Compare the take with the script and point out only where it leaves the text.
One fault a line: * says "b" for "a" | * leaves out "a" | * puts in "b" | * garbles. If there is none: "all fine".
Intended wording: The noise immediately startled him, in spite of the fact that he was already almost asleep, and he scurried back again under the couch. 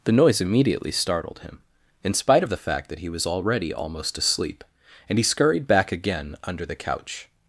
all fine